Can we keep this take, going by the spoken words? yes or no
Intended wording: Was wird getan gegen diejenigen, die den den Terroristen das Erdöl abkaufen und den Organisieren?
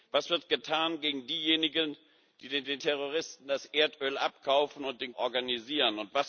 yes